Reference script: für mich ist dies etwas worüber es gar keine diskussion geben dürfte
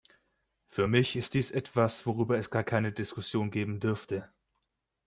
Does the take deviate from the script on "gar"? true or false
false